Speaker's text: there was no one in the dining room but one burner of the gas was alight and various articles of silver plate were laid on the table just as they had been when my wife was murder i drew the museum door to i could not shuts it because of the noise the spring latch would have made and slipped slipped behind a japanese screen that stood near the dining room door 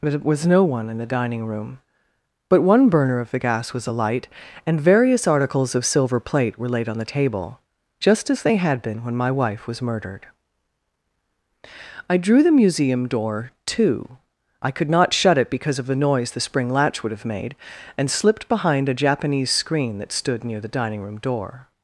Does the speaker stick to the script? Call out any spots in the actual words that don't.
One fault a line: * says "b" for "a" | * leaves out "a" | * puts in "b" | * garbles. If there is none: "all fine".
* says "murdered" for "murder"
* says "shut" for "shuts"
* leaves out "slipped"